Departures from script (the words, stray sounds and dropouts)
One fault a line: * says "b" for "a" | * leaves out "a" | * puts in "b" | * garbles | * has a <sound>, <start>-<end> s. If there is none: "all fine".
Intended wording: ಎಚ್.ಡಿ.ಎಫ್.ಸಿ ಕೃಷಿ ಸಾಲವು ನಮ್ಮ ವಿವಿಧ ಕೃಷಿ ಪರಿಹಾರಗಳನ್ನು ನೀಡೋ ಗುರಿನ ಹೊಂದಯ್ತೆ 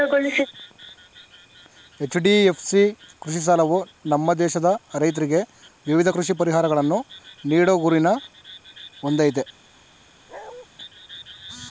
* puts in "ದೇಶದ ರೈತ್ರಿಗೆ"
* has a bark, 10.3-10.7 s